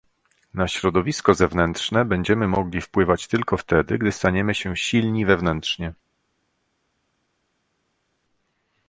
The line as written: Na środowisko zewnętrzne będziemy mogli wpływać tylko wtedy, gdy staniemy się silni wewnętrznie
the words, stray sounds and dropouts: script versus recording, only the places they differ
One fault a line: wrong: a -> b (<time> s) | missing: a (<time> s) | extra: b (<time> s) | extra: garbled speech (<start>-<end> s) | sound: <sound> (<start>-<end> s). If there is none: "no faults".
no faults